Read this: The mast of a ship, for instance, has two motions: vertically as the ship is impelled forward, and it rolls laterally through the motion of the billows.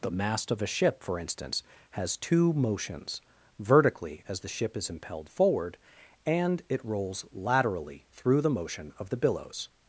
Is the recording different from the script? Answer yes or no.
no